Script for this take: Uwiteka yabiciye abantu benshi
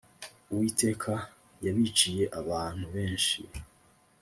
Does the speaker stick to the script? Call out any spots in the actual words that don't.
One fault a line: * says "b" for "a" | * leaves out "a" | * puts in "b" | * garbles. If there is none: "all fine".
all fine